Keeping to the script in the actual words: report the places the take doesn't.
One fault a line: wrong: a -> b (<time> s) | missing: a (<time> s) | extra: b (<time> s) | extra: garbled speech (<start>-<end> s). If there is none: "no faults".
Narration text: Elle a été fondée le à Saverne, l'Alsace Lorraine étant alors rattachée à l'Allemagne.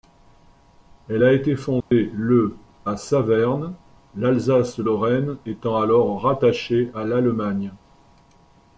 no faults